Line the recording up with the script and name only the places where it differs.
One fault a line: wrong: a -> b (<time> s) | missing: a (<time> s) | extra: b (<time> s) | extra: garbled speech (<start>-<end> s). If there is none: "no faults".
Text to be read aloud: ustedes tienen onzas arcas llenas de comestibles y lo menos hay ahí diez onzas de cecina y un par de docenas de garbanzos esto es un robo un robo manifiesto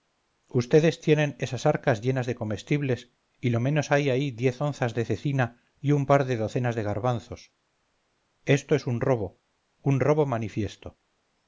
wrong: onzas -> esas (1.4 s)